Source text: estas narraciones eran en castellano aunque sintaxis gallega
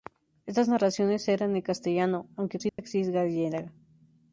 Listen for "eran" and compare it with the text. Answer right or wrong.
right